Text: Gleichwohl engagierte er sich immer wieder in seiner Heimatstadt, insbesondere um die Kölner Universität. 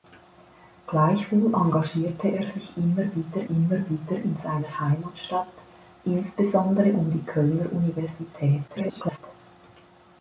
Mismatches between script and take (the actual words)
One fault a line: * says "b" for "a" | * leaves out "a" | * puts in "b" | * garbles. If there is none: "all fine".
* puts in "immer wieder"
* garbles